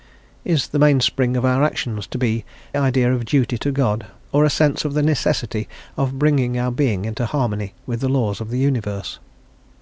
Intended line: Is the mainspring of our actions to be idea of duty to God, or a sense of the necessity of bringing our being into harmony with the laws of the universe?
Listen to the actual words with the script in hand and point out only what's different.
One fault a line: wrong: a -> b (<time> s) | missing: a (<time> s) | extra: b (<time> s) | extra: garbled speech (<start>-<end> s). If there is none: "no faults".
no faults